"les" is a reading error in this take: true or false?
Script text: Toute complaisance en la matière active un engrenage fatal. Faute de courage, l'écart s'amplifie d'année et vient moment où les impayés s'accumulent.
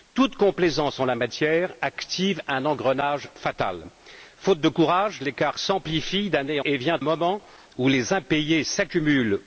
false